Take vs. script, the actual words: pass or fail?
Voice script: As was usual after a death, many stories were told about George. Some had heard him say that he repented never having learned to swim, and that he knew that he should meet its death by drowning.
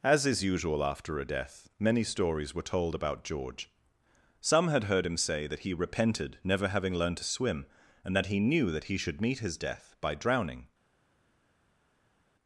fail